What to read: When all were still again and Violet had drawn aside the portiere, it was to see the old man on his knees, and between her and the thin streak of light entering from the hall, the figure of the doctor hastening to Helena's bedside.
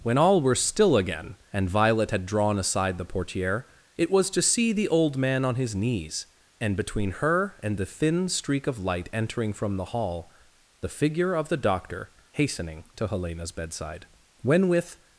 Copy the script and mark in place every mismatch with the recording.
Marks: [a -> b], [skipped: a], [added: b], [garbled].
When all were still again and Violet had drawn aside the portiere, it was to see the old man on his knees, and between her and the thin streak of light entering from the hall, the figure of the doctor hastening to Helena's bedside. [added: When with]